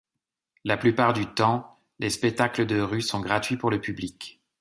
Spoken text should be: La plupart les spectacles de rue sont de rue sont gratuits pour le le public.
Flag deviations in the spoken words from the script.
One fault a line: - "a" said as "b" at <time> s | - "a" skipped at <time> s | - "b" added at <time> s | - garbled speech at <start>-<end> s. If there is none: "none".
- "du temps" added at 1.1 s
- "de rue sont" skipped at 3.2 s
- "le" skipped at 3.8 s